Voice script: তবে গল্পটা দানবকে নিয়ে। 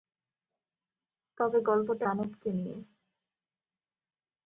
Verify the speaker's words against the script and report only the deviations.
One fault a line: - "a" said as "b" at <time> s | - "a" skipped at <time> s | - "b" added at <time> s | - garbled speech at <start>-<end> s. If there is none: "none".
none